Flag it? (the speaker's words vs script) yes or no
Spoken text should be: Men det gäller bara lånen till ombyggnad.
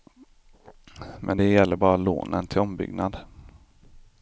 no